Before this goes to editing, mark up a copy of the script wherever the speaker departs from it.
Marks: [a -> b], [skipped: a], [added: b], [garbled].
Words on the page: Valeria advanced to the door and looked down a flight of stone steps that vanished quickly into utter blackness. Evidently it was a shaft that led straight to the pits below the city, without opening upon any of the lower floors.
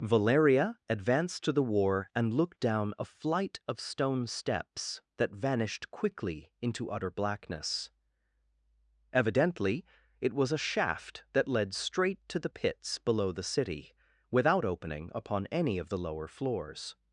Valeria advanced to the [door -> war] and looked down a flight of stone steps that vanished quickly into utter blackness. Evidently it was a shaft that led straight to the pits below the city, without opening upon any of the lower floors.